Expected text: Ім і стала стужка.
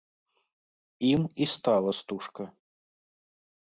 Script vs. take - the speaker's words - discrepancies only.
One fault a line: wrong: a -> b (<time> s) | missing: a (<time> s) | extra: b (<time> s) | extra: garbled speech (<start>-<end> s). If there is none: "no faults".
no faults